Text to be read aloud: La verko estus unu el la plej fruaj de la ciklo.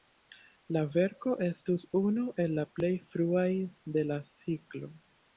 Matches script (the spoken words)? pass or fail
pass